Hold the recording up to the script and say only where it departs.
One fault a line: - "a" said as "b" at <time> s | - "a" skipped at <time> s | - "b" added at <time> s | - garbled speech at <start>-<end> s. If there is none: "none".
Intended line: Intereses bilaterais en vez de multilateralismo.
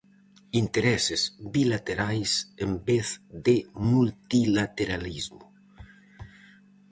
none